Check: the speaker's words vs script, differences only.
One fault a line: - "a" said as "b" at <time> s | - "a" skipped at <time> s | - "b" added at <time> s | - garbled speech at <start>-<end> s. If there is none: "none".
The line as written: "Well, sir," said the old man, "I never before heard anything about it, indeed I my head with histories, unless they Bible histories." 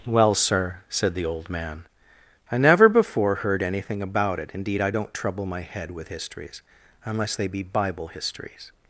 - "don't trouble" added at 4.9 s
- "be" added at 7.5 s